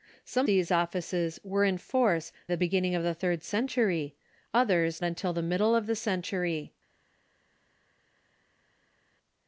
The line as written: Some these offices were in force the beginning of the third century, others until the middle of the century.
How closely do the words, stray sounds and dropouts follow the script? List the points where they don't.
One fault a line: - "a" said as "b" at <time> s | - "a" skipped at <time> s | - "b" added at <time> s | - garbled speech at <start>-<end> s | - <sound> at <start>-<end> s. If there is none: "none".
none